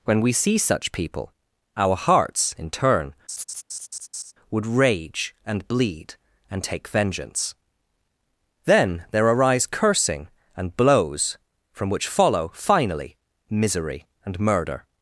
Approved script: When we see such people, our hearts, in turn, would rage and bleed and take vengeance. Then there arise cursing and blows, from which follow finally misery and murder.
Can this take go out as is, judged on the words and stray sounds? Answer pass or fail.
fail